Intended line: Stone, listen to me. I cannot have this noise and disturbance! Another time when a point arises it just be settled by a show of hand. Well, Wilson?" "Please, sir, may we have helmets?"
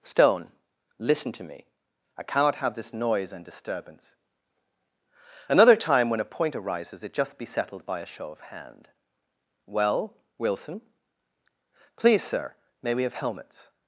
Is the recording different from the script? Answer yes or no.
no